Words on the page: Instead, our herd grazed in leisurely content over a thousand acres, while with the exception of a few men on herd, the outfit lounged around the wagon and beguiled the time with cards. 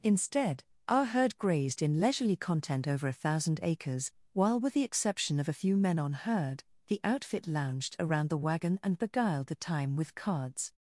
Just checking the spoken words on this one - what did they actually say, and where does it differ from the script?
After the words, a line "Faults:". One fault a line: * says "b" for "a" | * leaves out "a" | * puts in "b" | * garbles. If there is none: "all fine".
Instead, our herd grazed in leisurely content over a thousand acres, while with the exception of a few men on herd, the outfit lounged around the wagon and beguiled the time with cards.
Faults:
all fine